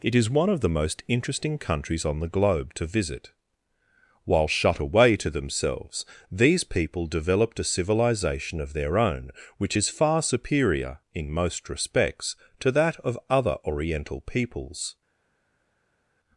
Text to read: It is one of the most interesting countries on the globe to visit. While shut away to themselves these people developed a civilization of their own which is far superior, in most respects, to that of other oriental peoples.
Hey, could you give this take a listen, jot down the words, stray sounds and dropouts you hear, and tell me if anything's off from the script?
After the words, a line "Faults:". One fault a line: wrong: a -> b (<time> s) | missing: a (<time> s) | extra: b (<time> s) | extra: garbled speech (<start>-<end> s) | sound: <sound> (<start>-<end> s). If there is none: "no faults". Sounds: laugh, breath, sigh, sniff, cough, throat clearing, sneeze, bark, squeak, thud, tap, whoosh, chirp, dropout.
It is one of the most interesting countries on the globe to visit. While shut away to themselves these people developed a civilization of their own which is far superior, in most respects, to that of other oriental peoples.
Faults:
no faults